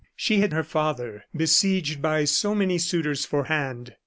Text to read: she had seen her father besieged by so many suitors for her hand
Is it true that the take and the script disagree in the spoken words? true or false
true